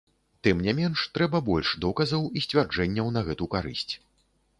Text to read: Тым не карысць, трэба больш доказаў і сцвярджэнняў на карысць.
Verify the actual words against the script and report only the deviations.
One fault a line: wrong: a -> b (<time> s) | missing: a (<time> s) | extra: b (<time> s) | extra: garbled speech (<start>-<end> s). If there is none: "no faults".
wrong: карысць -> менш (0.8 s)
extra: гэту (3.3 s)